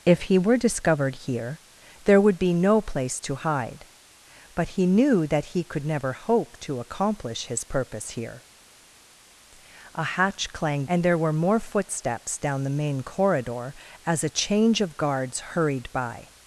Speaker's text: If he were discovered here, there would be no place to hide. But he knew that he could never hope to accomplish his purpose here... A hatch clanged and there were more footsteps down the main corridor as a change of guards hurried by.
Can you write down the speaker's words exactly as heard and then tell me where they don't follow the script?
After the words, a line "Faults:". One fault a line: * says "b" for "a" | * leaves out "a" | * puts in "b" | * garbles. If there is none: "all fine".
If he were discovered here, there would be no place to hide. But he knew that he could never hope to accomplish his purpose here... A hatch clanged and there were more footsteps down the main corridor as a change of guards hurried by.
Faults:
all fine